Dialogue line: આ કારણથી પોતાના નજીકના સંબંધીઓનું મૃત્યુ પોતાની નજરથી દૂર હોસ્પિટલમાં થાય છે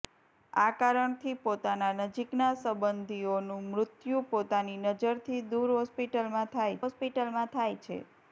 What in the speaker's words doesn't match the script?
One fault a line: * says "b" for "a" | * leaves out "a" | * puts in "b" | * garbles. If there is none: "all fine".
* puts in "હોસ્પિટલમાં થાય"